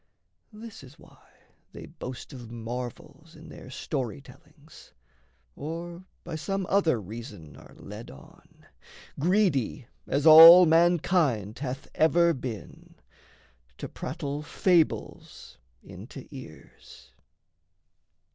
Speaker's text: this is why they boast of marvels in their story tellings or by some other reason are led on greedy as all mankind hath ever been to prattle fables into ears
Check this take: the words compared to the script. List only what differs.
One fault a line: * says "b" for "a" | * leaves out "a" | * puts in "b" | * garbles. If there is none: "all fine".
all fine